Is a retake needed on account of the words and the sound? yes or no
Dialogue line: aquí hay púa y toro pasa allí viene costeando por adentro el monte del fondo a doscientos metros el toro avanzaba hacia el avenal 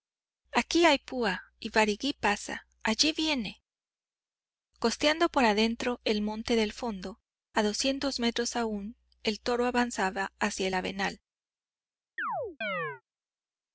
yes